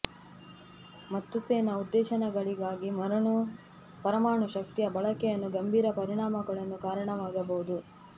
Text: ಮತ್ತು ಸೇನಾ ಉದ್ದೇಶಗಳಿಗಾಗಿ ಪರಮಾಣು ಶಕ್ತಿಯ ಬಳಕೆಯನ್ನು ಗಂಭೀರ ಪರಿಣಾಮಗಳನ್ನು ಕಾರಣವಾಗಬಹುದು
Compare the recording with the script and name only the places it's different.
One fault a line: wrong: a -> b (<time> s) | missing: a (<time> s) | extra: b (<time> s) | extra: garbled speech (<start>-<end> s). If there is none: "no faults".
no faults